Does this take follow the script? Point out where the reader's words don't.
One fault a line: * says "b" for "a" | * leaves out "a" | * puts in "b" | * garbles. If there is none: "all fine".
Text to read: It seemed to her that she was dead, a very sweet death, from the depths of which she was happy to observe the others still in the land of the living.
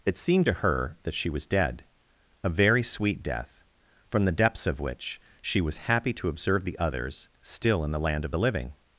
all fine